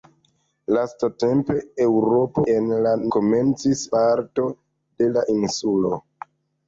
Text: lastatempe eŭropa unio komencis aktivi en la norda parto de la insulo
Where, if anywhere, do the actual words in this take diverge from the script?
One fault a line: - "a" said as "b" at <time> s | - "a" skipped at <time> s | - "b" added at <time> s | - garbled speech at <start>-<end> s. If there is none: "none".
- "unio komencis aktivi" skipped at 2.5 s
- "norda" said as "komencis" at 3.2 s